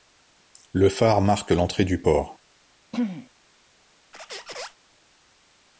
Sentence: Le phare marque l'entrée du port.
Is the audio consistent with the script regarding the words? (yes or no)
yes